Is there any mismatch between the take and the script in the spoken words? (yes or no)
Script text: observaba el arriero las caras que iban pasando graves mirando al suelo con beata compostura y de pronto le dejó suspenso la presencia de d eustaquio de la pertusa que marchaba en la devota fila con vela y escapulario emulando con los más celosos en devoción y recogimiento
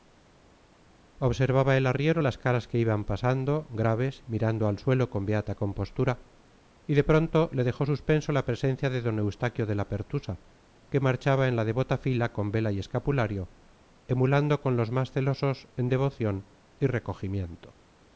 no